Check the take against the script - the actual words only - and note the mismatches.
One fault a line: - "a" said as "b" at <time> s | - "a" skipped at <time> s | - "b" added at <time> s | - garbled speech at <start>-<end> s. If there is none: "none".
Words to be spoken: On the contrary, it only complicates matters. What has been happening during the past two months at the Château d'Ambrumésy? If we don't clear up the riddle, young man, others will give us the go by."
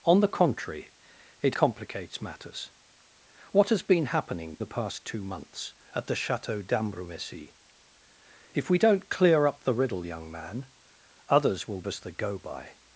- "only" skipped at 1.6 s
- "during" skipped at 4.6 s
- "give" skipped at 11.8 s